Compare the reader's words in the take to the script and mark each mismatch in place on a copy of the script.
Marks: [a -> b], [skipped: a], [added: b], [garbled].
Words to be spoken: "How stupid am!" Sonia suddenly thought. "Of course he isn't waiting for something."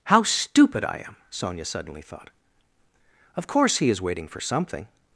"How stupid [added: I] am!" Sonia suddenly thought. "Of course he [isn't -> is] waiting for something."